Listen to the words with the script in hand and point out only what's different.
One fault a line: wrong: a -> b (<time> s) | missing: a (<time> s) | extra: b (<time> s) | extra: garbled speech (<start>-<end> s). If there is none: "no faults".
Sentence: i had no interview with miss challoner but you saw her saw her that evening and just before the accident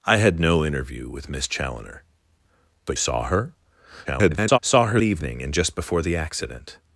missing: you (3.0 s)
extra: garbled speech (4.0-4.6 s)
missing: that (5.0 s)